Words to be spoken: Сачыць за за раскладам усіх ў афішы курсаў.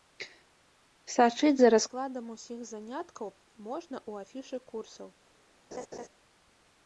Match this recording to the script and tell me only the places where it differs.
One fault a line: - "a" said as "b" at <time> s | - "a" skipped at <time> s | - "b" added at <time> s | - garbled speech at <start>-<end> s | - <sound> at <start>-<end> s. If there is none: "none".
- "за" skipped at 1.7 s
- "заняткаў можна" added at 2.7 s
- laugh at 5.7-6.1 s